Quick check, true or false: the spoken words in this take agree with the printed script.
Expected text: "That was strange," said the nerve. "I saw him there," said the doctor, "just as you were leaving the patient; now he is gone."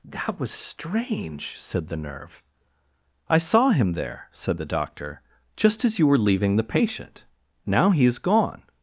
true